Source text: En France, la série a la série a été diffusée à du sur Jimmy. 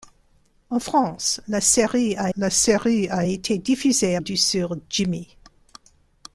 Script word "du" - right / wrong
right